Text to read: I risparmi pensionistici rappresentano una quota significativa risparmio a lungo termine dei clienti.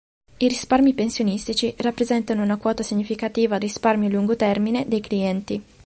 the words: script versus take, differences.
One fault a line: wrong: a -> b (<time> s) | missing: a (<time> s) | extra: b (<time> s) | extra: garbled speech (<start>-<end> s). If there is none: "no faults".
no faults